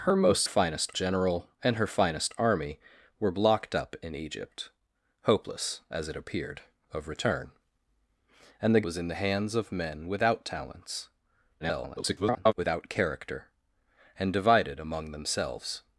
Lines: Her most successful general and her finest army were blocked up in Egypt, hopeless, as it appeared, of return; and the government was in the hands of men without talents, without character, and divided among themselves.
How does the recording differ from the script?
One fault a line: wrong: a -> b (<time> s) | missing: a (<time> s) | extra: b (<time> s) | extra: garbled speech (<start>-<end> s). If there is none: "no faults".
wrong: successful -> finest (0.4 s)
missing: government (8.9 s)
extra: garbled speech (11.6-12.5 s)